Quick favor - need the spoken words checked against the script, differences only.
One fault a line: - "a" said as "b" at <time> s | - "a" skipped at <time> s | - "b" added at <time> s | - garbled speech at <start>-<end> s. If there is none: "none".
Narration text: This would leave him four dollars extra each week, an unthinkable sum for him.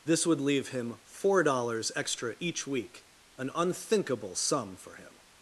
none